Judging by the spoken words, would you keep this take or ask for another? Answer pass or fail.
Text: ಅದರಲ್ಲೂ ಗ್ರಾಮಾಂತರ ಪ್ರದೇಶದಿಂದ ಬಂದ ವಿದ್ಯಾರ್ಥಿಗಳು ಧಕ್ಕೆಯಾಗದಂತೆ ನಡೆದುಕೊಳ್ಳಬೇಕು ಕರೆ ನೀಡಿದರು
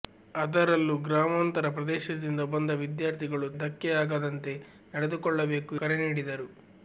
pass